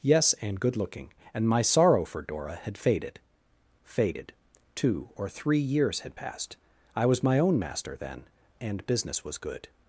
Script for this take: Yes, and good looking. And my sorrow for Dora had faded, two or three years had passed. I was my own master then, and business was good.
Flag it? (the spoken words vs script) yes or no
yes